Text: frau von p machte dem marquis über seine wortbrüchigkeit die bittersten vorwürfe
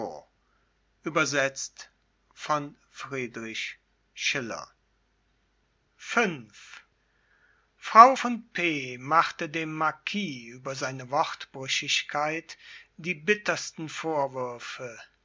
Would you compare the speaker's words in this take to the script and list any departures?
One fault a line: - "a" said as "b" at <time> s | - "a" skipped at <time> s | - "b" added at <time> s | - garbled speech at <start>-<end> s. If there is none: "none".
none